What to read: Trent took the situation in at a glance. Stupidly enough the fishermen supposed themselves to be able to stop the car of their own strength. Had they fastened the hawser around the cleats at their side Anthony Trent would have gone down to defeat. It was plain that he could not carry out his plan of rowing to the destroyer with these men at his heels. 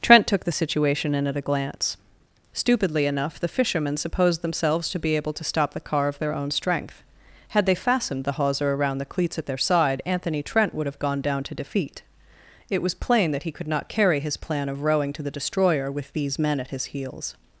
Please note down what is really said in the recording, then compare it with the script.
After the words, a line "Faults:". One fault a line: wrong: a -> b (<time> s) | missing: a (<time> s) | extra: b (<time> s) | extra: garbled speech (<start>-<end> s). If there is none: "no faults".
Trent took the situation in at a glance. Stupidly enough the fishermen supposed themselves to be able to stop the car of their own strength. Had they fastened the hawser around the cleats at their side Anthony Trent would have gone down to defeat. It was plain that he could not carry his plan of rowing to the destroyer with these men at his heels.
Faults:
missing: out (14.2 s)